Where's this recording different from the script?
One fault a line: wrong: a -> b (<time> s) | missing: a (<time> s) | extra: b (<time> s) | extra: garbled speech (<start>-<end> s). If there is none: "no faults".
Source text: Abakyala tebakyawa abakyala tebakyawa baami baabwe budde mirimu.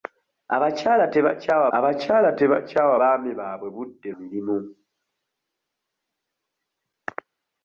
no faults